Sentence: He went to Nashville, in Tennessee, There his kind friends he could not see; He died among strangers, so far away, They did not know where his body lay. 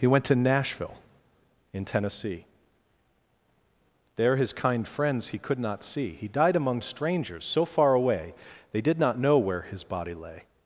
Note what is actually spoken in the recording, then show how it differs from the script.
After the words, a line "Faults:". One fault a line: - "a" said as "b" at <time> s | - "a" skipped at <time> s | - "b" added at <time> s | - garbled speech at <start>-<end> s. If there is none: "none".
He went to Nashville, in Tennessee, There his kind friends he could not see; He died among strangers, so far away, They did not know where his body lay.
Faults:
none